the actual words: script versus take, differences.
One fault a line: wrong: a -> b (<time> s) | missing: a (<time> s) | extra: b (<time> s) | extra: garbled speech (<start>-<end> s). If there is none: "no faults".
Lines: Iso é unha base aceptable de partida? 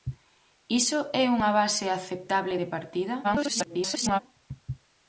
extra: garbled speech (3.2-4.2 s)